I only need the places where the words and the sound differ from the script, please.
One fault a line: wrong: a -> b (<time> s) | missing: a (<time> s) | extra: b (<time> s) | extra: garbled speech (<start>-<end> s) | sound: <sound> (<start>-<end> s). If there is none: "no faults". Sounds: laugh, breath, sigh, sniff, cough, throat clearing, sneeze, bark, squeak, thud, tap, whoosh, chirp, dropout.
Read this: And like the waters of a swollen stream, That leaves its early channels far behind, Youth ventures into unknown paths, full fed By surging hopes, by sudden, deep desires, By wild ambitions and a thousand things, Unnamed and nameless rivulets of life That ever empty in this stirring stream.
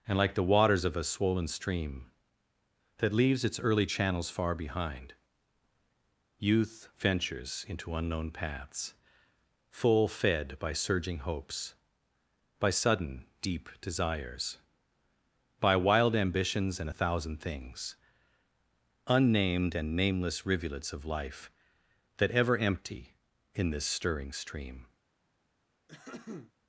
sound: throat clearing (25.9-26.5 s)